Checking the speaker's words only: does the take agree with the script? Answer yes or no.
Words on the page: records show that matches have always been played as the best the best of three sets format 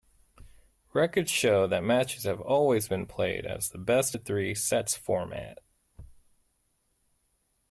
no